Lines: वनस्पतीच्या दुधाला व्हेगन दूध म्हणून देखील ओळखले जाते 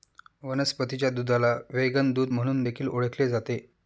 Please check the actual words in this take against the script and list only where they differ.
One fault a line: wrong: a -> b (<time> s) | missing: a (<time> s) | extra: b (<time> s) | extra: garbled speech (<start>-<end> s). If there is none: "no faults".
no faults